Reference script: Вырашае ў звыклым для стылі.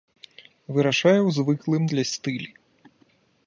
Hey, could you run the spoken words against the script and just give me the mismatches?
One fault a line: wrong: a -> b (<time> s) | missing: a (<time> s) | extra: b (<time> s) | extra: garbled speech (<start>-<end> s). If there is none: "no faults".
no faults